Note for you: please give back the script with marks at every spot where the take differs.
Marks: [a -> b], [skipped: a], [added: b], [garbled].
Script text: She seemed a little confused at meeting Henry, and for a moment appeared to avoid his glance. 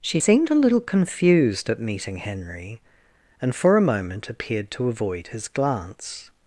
She seemed a little confused at meeting Henry, and for a moment appeared to avoid his glance.